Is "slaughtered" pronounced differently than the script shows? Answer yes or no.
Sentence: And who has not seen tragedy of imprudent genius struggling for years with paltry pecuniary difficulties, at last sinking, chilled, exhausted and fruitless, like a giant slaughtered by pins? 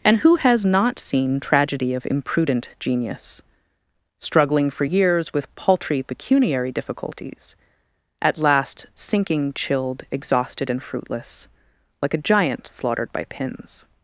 no